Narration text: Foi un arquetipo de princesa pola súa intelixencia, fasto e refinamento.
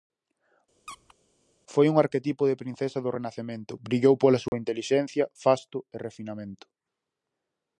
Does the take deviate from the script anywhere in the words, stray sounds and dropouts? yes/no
yes